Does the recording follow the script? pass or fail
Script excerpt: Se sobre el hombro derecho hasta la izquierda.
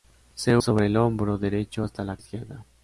pass